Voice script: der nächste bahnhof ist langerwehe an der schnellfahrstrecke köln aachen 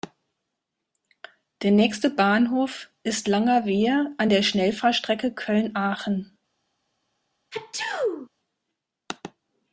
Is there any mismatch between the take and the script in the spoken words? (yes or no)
no